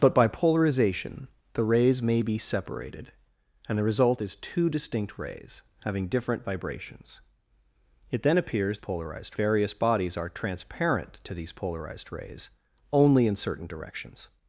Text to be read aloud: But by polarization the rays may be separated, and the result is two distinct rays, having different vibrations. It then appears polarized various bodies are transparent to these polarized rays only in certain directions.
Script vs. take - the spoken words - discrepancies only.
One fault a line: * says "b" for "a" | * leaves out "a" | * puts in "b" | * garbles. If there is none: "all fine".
all fine